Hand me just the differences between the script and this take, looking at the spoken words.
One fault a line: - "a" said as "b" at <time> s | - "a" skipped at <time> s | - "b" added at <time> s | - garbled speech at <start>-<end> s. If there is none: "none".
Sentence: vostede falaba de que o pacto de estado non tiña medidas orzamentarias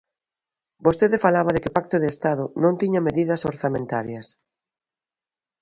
none